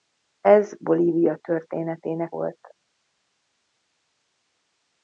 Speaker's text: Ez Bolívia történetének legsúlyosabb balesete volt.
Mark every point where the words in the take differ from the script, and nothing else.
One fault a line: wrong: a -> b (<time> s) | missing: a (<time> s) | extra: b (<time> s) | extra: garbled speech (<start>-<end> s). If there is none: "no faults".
missing: legsúlyosabb balesete (2.4 s)